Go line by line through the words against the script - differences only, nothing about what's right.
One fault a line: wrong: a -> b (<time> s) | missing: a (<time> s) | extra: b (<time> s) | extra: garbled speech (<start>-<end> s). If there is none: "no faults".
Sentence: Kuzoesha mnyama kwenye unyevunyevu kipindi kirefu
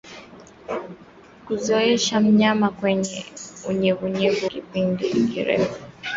no faults